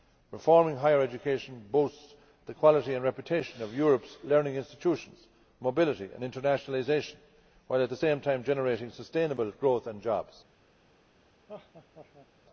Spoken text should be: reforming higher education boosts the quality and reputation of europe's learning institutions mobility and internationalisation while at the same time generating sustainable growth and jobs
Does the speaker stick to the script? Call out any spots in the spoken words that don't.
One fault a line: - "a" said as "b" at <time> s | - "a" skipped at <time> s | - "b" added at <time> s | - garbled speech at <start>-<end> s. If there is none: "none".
none